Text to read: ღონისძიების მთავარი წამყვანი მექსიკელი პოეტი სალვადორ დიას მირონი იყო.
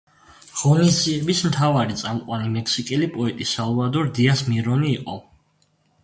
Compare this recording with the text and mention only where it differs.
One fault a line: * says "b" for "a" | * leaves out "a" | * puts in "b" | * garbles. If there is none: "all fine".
all fine